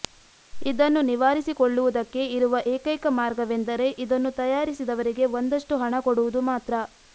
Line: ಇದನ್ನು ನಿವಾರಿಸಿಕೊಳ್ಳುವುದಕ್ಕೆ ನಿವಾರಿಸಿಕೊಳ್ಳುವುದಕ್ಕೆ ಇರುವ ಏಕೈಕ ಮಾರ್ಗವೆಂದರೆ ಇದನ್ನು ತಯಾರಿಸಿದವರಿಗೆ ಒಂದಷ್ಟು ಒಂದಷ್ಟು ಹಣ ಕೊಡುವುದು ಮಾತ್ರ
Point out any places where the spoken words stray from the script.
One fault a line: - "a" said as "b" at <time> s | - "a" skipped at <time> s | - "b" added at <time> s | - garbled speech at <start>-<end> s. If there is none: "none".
- "ನಿವಾರಿಸಿಕೊಳ್ಳುವುದಕ್ಕೆ" skipped at 2.2 s
- "ಒಂದಷ್ಟು" skipped at 5.8 s